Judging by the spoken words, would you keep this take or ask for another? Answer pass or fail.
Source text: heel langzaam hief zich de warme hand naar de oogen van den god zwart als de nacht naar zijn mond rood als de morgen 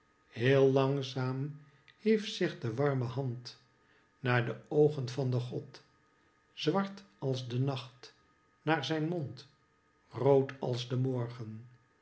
pass